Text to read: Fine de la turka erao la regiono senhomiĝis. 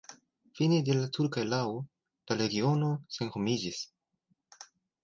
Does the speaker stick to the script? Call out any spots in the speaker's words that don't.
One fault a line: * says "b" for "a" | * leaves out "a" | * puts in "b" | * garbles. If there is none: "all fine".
all fine